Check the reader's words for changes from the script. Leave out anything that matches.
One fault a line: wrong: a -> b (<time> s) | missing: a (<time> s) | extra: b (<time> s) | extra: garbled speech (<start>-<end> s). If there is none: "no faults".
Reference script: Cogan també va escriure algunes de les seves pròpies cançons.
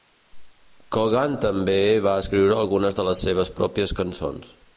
no faults